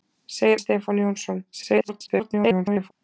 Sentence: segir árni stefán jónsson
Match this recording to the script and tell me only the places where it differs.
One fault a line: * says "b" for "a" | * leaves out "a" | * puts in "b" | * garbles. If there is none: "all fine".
* leaves out "árni"
* garbles